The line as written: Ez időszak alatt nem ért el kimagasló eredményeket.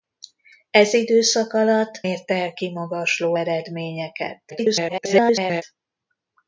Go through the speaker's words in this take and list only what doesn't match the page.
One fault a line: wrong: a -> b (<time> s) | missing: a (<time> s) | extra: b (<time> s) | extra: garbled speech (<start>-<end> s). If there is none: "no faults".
missing: nem (2.0 s)
extra: garbled speech (4.5-5.6 s)